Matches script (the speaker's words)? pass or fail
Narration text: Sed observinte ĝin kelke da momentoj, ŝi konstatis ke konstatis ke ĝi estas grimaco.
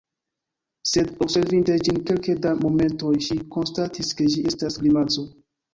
fail